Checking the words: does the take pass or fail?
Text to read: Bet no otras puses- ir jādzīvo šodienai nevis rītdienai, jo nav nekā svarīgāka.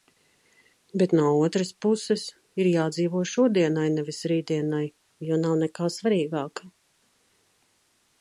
pass